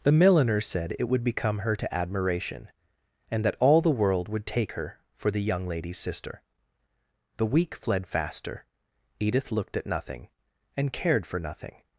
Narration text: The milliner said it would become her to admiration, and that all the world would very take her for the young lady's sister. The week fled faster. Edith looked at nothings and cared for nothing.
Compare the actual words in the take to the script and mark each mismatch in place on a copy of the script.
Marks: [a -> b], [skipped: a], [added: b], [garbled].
The milliner said it would become her to admiration, and that all the world would [skipped: very] take her for the young lady's sister. The week fled faster. Edith looked at [nothings -> nothing] and cared for nothing.